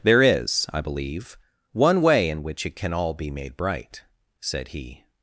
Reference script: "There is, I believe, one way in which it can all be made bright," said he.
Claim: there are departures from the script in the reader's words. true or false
false